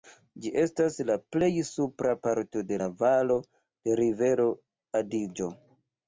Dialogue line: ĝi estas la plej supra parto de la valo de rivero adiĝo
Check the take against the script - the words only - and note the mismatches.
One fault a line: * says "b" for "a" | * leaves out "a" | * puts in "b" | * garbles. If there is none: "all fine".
all fine